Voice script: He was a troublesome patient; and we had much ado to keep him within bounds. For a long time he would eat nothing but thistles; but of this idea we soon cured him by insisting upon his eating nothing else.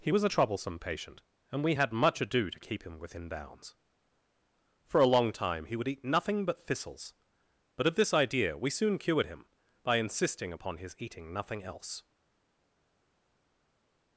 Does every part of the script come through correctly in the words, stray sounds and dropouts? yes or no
yes